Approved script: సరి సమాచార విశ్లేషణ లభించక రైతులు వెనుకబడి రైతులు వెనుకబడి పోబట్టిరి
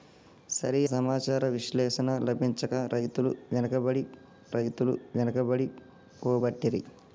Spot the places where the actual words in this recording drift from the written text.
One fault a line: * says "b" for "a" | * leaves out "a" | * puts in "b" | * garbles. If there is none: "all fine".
all fine